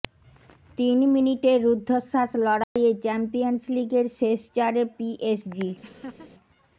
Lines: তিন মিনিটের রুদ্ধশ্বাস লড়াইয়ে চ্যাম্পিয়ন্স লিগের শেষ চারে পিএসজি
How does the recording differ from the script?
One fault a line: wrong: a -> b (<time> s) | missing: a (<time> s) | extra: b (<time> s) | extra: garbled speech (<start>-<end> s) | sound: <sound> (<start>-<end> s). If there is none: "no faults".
sound: dropout (2.6-2.8 s)
sound: laugh (5.8-6.3 s)